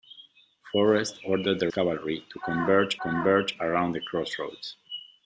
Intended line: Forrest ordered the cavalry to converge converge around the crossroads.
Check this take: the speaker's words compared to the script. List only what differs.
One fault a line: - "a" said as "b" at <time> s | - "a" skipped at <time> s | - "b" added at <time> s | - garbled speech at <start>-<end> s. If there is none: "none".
none